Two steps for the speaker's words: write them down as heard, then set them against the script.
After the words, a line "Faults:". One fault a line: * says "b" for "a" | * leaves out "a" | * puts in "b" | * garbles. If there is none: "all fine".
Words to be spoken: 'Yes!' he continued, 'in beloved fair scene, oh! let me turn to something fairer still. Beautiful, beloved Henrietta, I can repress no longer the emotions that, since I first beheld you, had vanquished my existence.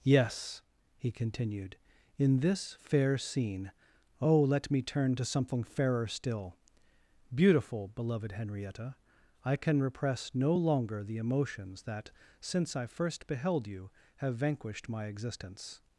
'Yes!' he continued, 'in this fair scene, oh! let me turn to something fairer still. Beautiful, beloved Henrietta, I can repress no longer the emotions that, since I first beheld you, have vanquished my existence.
Faults:
* says "this" for "beloved"
* says "have" for "had"